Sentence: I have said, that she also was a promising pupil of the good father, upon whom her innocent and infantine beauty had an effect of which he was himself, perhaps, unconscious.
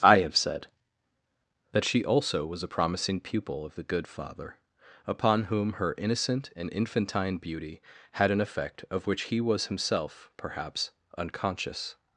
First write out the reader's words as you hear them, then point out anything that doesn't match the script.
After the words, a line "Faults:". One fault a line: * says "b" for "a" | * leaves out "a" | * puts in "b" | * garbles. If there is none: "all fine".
I have said, that she also was a promising pupil of the good father, upon whom her innocent and infantine beauty had an effect of which he was himself, perhaps, unconscious.
Faults:
all fine